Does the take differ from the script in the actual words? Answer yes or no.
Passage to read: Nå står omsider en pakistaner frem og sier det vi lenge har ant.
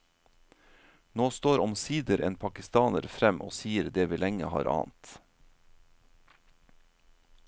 no